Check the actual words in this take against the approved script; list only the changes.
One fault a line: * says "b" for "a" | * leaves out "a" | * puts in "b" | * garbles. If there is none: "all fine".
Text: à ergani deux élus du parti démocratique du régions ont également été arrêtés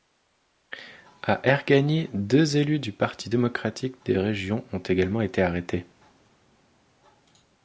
* says "des" for "du"